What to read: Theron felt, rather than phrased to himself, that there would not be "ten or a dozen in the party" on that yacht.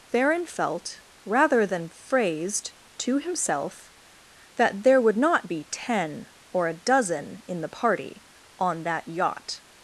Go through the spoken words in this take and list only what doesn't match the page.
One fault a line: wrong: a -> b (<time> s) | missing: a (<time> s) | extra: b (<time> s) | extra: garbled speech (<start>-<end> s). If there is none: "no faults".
no faults